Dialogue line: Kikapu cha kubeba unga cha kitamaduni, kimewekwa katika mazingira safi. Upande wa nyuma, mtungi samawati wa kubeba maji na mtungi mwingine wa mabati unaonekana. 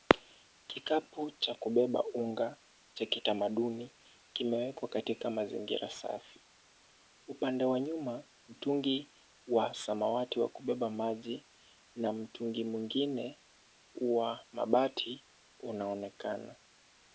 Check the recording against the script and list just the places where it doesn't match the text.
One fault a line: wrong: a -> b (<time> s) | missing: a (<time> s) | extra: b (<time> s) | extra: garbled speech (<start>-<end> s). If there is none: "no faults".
extra: wa (9.5 s)